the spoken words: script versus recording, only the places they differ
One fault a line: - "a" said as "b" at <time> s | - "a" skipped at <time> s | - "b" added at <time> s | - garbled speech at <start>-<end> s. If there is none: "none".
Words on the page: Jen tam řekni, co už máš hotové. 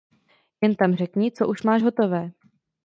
none